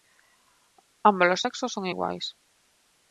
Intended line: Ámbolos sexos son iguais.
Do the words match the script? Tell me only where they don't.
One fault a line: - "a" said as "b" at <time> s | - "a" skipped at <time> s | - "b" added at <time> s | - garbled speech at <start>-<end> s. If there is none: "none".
none